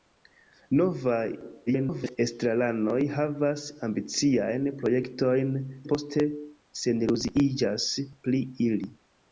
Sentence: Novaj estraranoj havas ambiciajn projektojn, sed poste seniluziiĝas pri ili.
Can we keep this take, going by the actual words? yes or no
no